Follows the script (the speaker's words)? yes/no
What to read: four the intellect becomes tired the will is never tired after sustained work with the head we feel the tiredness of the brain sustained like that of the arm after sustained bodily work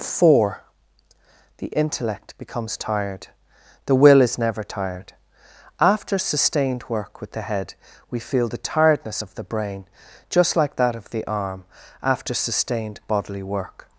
no